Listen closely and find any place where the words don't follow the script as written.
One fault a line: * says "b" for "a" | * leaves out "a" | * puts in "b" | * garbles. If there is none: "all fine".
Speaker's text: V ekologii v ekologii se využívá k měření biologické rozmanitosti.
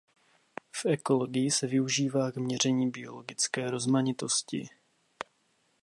* leaves out "v ekologii"